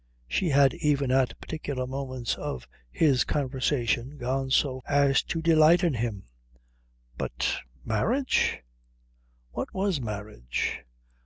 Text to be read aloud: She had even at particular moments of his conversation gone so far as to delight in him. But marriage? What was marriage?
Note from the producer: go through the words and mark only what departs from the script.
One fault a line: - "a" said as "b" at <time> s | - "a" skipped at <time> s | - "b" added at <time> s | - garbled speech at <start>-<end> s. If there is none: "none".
- "far" skipped at 4.8 s